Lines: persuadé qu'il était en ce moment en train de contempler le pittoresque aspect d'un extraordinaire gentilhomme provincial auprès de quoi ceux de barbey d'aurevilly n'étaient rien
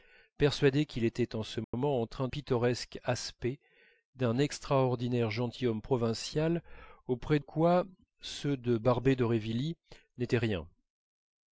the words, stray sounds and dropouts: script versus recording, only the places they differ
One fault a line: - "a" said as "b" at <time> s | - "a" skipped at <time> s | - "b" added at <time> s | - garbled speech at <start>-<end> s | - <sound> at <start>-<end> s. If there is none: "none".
- dropout at 1.6-1.7 s
- "de contempler le" skipped at 2.3 s
- "de" skipped at 7.4 s